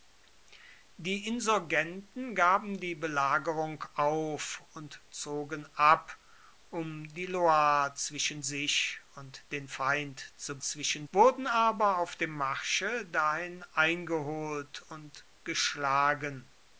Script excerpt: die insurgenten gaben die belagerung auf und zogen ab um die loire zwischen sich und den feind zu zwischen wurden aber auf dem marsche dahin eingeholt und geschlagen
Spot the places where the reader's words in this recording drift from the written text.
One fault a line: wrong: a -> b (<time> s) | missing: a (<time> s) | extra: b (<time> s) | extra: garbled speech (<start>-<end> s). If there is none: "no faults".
no faults